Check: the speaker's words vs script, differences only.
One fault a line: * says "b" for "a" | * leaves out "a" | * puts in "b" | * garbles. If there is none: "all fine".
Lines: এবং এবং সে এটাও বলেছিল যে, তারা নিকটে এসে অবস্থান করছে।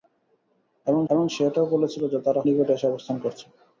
all fine